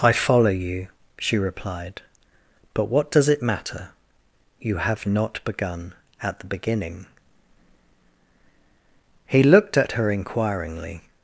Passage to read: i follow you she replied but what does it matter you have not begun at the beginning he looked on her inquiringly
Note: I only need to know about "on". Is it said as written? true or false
false